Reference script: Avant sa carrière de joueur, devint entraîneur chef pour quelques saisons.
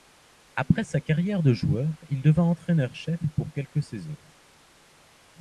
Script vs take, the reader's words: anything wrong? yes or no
yes